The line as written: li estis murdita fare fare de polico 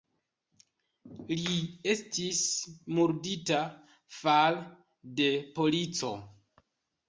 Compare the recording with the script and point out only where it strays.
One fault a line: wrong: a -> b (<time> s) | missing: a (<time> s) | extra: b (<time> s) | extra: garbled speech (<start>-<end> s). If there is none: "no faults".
missing: fare (4.6 s)